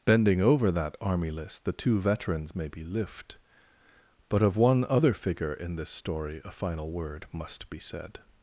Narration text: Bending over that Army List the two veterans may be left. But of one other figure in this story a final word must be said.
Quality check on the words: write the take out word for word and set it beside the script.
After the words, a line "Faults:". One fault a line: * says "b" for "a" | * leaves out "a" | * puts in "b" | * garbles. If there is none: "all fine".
Bending over that Army List the two veterans may be lift. But of one other figure in this story a final word must be said.
Faults:
* says "lift" for "left"